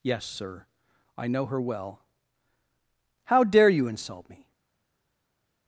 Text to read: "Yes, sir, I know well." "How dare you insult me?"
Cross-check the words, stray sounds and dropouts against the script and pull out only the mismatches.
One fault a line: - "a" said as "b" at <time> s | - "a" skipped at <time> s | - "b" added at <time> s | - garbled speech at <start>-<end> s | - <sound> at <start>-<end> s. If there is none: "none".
- "her" added at 1.5 s